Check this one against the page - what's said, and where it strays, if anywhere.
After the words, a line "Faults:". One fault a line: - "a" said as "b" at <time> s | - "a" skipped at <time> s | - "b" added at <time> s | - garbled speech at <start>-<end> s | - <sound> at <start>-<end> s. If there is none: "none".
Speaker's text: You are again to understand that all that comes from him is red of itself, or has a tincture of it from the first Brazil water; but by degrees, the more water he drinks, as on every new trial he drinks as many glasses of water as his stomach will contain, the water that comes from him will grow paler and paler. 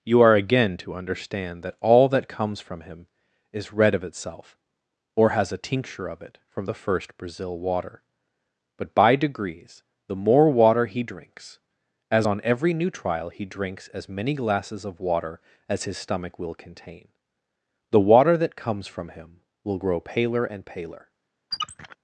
You are again to understand that all that comes from him is red of itself, or has a tincture of it from the first Brazil water; but by degrees, the more water he drinks, as on every new trial he drinks as many glasses of water as his stomach will contain, the water that comes from him will grow paler and paler.
Faults:
- squeak at 21.5-22.0 s